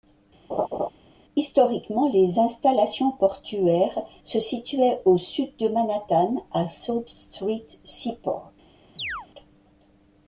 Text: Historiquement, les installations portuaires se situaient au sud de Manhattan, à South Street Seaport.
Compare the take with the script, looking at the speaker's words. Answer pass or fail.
pass